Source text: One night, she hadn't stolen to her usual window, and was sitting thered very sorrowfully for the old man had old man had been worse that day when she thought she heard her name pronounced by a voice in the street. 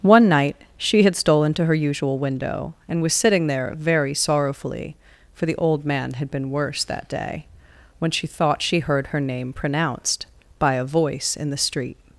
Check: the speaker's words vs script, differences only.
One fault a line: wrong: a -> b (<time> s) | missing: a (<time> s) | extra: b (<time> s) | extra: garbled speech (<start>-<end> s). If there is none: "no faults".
wrong: hadn't -> had (1.0 s)
wrong: thered -> there (3.5 s)
missing: old man had (6.3 s)